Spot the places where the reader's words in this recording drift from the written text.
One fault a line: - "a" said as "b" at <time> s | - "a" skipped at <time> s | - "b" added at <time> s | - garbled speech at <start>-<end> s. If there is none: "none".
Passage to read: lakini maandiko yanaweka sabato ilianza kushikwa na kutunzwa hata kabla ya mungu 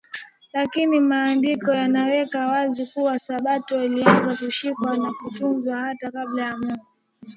- "wazi kuwa" added at 2.5 s